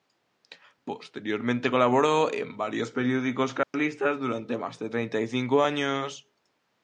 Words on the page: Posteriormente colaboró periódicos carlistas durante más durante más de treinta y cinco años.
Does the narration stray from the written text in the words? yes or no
yes